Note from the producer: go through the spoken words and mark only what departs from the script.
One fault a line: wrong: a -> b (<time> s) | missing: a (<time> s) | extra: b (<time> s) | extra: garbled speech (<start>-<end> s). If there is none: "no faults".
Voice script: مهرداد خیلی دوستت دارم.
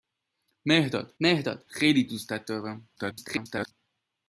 extra: مهرداد (1.2 s)
extra: garbled speech (3.0-3.7 s)